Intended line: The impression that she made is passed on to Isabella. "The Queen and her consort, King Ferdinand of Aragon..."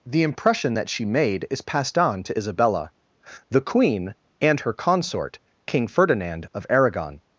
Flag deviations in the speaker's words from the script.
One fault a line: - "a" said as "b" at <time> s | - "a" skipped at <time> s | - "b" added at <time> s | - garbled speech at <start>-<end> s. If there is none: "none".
none